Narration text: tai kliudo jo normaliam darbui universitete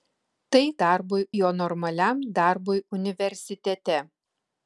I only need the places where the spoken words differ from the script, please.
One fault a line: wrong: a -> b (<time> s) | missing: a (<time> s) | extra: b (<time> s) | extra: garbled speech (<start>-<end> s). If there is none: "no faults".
wrong: kliudo -> darbui (0.8 s)